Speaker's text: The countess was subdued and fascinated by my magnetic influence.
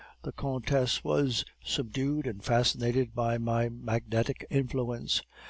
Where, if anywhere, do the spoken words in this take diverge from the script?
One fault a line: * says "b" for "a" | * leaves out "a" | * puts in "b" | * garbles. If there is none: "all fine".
all fine